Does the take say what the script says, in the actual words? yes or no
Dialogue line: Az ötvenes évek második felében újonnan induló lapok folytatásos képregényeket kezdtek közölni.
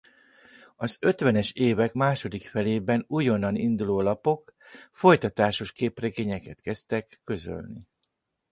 yes